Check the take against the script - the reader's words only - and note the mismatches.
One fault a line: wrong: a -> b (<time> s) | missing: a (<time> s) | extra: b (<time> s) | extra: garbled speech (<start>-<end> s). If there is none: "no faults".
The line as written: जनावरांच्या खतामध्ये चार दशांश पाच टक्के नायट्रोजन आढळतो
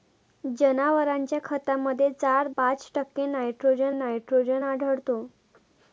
missing: दशांश (2.5 s)
extra: नायट्रोजन (3.9 s)